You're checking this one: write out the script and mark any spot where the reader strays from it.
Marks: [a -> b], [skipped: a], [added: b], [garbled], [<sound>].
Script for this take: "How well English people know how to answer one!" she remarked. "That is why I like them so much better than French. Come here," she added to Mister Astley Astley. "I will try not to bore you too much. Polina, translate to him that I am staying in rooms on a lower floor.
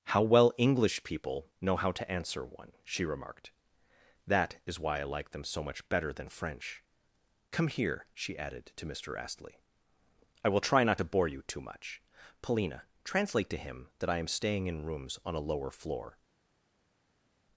"How well English people know how to answer one!" she remarked. "That is why I like them so much better than French. Come here," she added to Mister Astley [skipped: Astley.] "I will try not to bore you too much. Polina, translate to him that I am staying in rooms on a lower floor.